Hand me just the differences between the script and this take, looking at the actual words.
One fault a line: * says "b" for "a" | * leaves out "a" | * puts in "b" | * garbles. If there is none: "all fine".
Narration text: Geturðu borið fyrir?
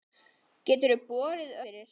all fine